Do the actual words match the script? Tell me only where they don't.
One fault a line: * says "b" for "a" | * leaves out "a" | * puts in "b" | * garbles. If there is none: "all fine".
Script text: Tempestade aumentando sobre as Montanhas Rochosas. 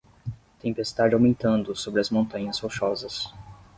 all fine